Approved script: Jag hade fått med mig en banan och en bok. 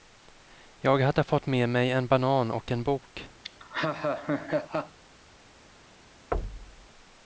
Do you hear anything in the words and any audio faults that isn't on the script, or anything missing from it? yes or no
yes